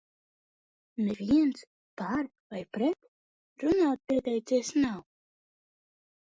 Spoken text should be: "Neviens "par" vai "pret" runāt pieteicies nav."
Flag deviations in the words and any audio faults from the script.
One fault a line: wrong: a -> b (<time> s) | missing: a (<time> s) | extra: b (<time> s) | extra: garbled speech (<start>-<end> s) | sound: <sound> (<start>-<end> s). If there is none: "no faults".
no faults